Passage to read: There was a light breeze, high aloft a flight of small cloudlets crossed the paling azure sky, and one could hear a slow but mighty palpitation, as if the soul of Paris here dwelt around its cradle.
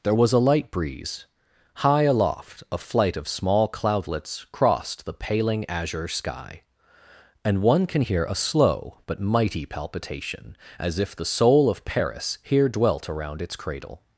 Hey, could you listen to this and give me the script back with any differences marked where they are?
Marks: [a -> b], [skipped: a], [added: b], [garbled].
There was a light breeze, high aloft a flight of small cloudlets crossed the paling azure sky, and one [could -> can] hear a slow but mighty palpitation, as if the soul of Paris here dwelt around its cradle.